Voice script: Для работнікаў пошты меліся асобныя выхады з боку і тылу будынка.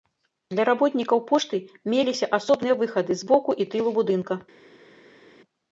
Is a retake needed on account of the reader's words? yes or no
no